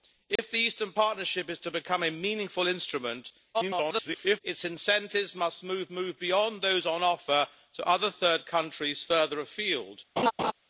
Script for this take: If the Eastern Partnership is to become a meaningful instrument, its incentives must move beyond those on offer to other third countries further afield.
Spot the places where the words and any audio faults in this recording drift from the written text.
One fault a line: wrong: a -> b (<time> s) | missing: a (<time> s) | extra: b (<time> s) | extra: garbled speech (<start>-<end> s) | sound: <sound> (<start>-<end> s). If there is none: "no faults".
sound: dropout (0.4-0.4 s)
extra: garbled speech (3.5-4.4 s)
extra: move (5.9 s)
sound: laugh (10.2-10.5 s)